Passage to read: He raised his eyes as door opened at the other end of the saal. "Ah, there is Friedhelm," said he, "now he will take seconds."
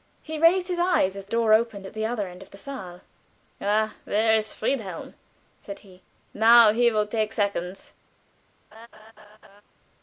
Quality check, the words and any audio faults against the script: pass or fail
fail